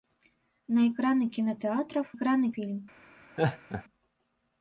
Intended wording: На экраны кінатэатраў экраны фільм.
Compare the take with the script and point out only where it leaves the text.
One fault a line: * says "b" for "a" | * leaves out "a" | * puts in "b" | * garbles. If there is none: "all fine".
all fine